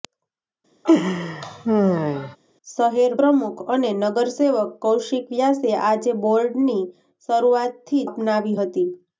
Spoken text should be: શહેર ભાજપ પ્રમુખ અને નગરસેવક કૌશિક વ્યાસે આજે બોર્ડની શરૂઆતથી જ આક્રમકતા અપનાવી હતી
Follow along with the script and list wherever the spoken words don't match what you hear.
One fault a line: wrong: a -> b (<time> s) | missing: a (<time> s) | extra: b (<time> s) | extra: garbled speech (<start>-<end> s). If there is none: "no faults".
missing: ભાજપ (3.1 s)
missing: જ આક્રમકતા (8.0 s)